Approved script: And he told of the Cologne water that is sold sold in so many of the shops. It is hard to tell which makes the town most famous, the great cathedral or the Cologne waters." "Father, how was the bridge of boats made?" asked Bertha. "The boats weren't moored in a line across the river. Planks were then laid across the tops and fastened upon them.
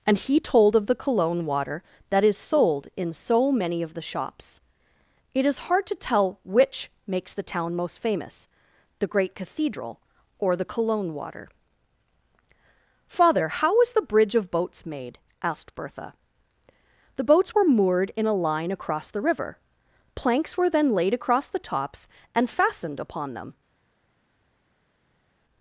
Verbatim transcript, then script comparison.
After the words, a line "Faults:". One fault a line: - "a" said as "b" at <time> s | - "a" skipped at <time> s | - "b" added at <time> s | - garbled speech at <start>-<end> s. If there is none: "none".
And he told of the Cologne water that is sold in so many of the shops. It is hard to tell which makes the town most famous, the great cathedral or the Cologne water." "Father, how was the bridge of boats made?" asked Bertha. "The boats were moored in a line across the river. Planks were then laid across the tops and fastened upon them.
Faults:
- "sold" skipped at 2.9 s
- "waters" said as "water" at 11.1 s
- "weren't" said as "were" at 17.5 s